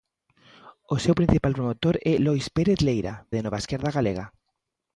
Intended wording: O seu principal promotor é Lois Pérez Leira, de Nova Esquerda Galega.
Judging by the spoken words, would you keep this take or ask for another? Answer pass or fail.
pass